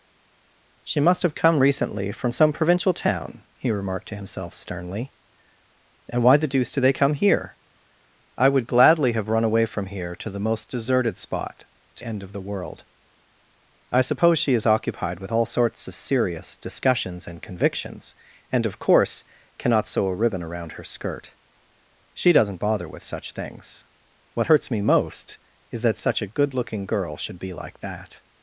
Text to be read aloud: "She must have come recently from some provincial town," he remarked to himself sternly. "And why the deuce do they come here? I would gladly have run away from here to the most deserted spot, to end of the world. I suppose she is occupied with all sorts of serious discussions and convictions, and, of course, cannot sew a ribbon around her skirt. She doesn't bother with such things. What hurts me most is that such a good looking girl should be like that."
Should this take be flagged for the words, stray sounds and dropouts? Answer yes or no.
no